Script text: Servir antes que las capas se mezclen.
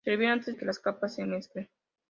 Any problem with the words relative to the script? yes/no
no